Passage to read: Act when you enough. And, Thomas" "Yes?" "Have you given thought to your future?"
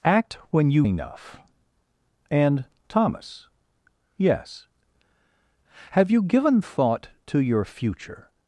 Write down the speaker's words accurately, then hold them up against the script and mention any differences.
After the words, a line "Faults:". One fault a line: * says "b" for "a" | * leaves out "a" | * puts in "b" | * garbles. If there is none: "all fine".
Act when you enough. And, Thomas" "Yes?" "Have you given thought to your future?"
Faults:
all fine